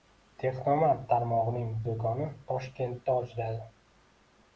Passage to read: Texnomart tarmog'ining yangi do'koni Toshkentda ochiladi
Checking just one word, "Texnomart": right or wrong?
right